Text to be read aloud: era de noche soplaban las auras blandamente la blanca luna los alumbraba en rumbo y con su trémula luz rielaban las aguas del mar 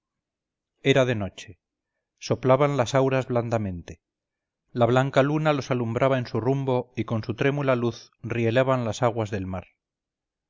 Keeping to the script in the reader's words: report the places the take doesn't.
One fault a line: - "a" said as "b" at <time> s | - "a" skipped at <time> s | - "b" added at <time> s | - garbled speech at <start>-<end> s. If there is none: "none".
- "su" added at 6.3 s